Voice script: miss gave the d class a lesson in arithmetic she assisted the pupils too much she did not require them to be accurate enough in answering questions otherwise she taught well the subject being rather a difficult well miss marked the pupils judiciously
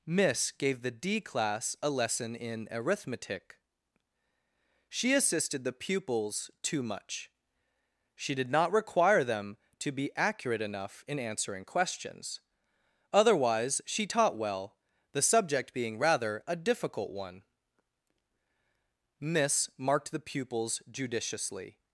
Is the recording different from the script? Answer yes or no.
yes